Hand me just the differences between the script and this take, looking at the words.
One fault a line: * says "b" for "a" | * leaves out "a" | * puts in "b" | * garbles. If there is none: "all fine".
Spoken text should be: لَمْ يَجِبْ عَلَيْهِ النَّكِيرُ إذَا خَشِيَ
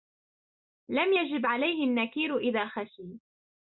all fine